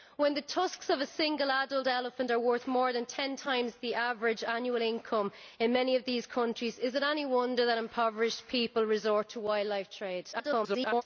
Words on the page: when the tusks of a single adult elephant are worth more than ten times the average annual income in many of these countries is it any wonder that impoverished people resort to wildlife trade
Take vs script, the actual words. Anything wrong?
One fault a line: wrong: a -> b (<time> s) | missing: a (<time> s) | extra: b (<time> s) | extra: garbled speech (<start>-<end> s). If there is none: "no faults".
extra: garbled speech (10.3-11.0 s)